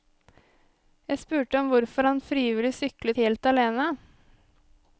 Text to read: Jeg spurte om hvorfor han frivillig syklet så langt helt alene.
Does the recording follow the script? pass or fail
fail